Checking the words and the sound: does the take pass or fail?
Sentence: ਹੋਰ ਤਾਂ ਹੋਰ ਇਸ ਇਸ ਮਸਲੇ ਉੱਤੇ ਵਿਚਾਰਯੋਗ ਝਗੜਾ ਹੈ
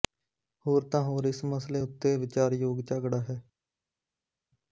fail